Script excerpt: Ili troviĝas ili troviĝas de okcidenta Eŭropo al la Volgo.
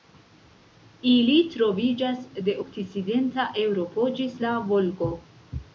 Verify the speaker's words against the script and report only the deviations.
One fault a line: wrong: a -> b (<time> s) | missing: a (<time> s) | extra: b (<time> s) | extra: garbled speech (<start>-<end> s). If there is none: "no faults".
missing: ili troviĝas (2.2 s)
wrong: al -> ĝis (4.2 s)